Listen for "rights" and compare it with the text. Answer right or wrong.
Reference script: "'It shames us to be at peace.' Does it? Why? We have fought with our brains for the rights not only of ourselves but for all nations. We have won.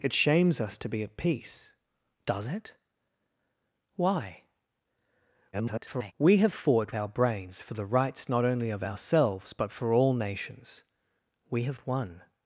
right